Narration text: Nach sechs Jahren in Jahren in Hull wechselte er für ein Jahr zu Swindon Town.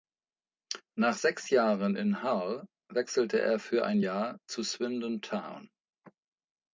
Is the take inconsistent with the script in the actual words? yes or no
yes